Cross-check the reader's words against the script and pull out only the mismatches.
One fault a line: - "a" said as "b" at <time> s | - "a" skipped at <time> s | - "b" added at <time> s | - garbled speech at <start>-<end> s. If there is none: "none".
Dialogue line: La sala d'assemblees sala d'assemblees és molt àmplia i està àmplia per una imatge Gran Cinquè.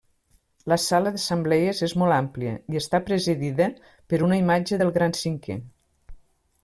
- "sala d'assemblees" skipped at 1.8 s
- "àmplia" said as "presidida" at 3.1 s
- "del" added at 4.8 s